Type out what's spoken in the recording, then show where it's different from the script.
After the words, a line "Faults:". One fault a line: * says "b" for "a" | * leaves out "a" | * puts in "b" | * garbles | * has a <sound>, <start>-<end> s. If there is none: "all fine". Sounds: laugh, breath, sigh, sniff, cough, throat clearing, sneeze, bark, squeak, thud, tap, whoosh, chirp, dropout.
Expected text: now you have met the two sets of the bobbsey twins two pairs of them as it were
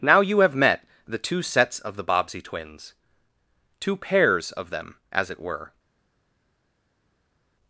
now you have met the two sets of the bobbsey twins two pairs of them as it were
Faults:
all fine